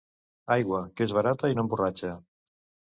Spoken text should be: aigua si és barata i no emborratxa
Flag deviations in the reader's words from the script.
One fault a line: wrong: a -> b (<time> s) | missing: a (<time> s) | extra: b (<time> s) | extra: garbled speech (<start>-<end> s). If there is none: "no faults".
wrong: si -> que (0.9 s)